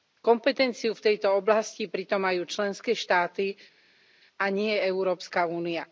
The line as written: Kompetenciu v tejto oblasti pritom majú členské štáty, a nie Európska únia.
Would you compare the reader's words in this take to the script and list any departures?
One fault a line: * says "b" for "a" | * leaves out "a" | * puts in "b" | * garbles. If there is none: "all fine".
all fine